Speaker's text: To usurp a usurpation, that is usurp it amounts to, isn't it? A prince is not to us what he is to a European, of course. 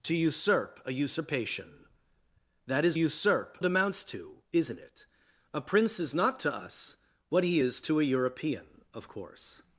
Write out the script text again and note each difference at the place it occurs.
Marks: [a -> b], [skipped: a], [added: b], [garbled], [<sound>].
To usurp a usurpation, that is usurp it amounts to, isn't it? A prince is not to us what he is to a European, of course.